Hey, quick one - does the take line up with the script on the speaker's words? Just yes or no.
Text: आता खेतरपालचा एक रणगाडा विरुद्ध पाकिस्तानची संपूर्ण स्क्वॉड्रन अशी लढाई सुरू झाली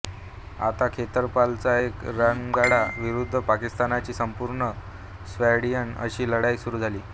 yes